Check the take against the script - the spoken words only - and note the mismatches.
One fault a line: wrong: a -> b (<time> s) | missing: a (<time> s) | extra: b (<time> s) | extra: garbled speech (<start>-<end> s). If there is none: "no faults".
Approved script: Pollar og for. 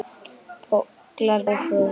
no faults